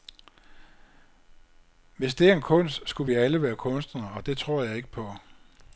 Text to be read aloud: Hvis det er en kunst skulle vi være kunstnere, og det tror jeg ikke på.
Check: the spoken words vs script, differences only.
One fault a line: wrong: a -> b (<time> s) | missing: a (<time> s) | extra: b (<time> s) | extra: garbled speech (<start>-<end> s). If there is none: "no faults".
extra: alle (3.1 s)